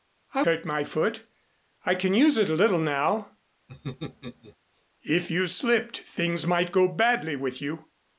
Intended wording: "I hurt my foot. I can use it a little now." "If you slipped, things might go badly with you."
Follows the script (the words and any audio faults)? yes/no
no